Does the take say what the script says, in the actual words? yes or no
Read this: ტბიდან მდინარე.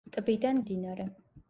yes